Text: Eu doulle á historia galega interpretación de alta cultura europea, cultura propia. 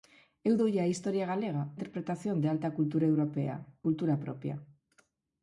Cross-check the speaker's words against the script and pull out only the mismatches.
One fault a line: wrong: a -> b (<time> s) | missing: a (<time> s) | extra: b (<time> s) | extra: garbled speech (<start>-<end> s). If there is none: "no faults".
no faults